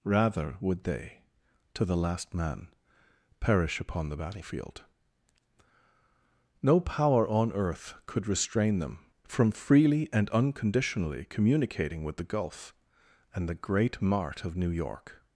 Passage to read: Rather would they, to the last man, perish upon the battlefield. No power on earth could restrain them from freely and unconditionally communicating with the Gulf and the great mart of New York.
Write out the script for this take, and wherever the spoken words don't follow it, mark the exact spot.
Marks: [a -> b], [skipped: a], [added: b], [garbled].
Rather would they, to the last man, perish upon the battlefield. No power on earth could restrain them from freely and unconditionally communicating with the Gulf and the great mart of New York.